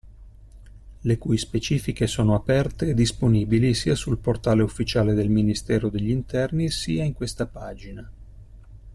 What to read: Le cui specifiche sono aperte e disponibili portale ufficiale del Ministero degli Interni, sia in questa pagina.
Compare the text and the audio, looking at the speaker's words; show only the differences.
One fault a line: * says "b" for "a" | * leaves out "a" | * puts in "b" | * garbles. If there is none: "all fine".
* puts in "sia sul"